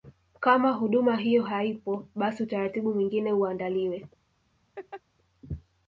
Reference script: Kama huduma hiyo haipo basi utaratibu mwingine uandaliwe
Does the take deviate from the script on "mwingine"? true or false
false